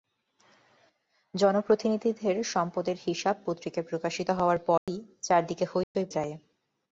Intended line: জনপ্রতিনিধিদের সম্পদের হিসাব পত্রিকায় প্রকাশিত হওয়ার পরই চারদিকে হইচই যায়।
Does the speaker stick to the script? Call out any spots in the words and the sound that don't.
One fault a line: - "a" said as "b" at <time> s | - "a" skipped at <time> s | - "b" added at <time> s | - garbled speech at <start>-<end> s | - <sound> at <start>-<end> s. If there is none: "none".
- dropout at 4.8-4.9 s
- dropout at 5.8-5.9 s